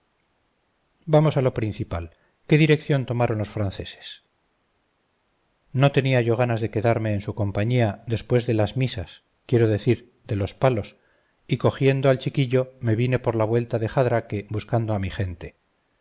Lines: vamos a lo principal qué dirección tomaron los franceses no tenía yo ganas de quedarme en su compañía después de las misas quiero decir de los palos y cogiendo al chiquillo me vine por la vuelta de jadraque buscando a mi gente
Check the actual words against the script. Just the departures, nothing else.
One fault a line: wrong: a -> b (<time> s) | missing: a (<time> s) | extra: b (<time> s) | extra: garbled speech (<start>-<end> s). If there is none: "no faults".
no faults